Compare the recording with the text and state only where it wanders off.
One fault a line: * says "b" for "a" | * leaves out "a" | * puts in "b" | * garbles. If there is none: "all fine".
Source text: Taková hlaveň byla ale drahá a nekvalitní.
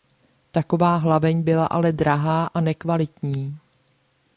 all fine